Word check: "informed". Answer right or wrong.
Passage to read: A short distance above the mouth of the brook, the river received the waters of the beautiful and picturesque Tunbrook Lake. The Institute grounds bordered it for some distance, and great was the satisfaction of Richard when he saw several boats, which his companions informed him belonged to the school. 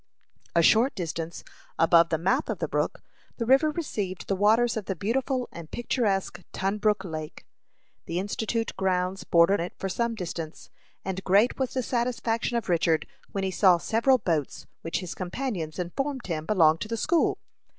right